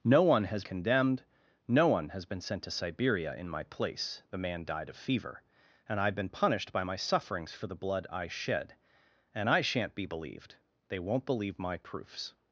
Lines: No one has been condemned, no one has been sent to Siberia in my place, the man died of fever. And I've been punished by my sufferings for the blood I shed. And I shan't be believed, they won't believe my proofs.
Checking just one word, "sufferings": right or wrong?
right